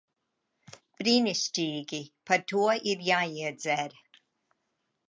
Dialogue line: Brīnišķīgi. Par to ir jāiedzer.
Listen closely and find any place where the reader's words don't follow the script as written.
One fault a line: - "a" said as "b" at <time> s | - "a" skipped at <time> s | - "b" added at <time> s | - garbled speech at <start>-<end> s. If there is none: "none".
none